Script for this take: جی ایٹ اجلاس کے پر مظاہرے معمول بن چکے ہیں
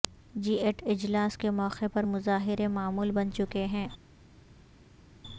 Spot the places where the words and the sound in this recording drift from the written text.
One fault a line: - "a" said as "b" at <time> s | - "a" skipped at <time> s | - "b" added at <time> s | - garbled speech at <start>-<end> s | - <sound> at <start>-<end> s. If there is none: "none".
- "موقع" added at 1.5 s